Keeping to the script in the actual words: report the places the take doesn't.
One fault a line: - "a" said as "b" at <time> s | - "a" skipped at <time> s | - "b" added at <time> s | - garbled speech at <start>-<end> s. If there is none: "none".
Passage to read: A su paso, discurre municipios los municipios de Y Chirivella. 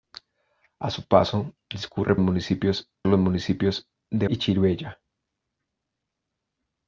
none